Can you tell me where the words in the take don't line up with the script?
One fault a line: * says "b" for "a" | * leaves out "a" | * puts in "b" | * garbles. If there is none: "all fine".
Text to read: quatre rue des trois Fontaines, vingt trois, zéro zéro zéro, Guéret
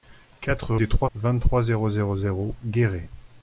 * leaves out "rue"
* leaves out "Fontaines"